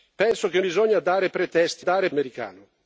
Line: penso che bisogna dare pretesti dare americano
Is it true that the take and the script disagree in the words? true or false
false